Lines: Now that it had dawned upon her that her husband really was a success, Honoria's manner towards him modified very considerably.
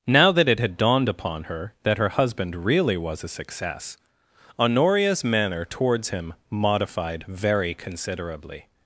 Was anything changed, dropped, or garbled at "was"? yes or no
no